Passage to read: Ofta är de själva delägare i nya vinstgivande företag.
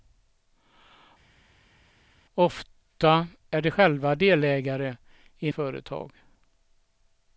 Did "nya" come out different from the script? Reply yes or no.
yes